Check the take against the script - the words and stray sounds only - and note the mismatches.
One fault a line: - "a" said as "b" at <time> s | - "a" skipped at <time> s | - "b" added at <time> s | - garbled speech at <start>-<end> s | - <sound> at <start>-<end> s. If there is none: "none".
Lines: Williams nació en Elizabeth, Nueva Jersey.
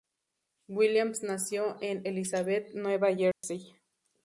- dropout at 3.3-3.4 s